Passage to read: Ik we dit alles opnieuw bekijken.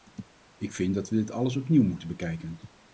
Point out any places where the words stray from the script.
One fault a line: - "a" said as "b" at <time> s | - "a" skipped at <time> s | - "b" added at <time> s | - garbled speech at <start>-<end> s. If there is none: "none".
- "vind dat" added at 0.7 s
- "moeten" added at 1.8 s